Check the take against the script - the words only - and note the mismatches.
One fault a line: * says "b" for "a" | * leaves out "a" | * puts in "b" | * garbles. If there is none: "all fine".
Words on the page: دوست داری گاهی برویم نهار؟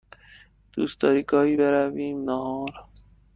all fine